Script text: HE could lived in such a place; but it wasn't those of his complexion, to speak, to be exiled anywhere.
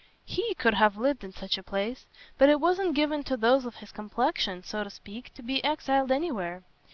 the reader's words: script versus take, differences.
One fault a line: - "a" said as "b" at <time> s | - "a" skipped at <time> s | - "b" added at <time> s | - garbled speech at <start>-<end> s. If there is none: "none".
- "have" added at 0.7 s
- "given to" added at 2.9 s
- "so" added at 4.6 s